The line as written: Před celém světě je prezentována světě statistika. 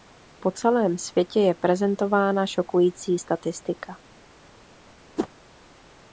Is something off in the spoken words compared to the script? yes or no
yes